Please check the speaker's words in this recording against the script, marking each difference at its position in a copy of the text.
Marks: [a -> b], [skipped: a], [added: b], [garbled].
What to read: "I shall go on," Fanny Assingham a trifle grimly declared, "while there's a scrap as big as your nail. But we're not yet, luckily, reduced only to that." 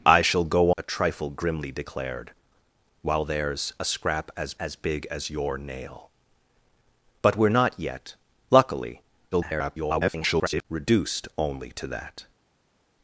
"I shall go [skipped: on," Fanny Assingham] a trifle grimly declared, "while there's a scrap as [added: as] big as your nail. But we're not yet, luckily, [garbled] reduced only to that."